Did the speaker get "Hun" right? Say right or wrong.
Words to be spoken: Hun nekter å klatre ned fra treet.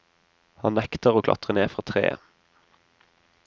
wrong